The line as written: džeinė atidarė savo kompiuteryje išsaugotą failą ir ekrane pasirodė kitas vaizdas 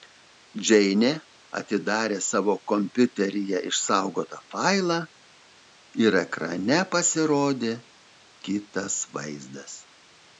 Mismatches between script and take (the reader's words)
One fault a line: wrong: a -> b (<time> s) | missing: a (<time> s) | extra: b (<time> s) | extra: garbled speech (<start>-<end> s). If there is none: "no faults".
no faults